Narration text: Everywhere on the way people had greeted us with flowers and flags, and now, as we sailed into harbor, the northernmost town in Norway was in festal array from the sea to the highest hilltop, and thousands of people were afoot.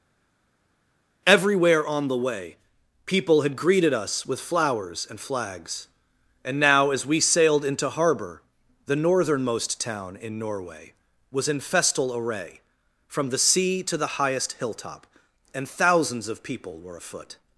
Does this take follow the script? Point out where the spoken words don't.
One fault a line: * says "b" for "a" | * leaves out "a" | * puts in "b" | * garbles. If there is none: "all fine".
all fine